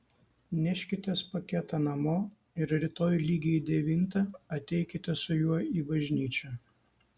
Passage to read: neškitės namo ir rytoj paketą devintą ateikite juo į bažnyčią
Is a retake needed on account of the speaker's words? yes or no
yes